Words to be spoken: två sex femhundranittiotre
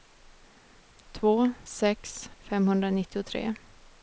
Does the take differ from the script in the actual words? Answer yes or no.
no